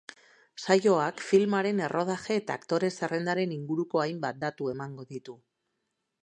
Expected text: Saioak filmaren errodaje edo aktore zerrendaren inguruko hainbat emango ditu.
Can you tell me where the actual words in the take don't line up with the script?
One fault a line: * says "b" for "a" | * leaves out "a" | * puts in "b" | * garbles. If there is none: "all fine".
* says "eta" for "edo"
* puts in "datu"